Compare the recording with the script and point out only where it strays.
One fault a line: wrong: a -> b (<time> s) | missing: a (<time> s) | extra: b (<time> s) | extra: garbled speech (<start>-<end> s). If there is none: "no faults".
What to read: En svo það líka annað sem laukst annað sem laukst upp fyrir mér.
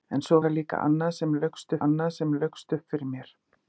no faults